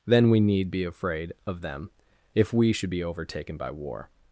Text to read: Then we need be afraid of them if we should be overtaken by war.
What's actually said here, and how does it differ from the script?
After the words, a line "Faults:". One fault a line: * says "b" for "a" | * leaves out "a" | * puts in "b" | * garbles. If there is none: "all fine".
Then we need be afraid of them if we should be overtaken by war.
Faults:
all fine